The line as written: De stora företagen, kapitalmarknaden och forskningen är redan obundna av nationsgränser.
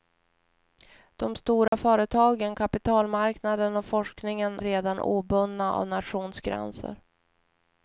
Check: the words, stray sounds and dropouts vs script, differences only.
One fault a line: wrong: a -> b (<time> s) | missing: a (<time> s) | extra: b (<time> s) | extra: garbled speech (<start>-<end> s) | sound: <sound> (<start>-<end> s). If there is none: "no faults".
sound: dropout (1.7-1.7 s)
missing: är (4.6 s)